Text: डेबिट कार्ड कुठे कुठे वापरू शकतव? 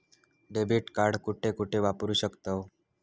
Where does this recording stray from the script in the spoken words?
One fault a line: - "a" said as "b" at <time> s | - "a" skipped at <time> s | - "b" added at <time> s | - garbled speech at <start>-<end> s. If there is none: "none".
none